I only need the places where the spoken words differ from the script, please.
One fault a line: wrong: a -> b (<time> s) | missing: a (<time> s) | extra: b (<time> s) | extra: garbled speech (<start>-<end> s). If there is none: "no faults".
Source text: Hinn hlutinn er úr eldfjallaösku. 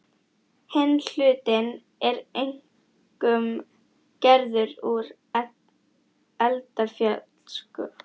extra: einkum gerður (2.4 s)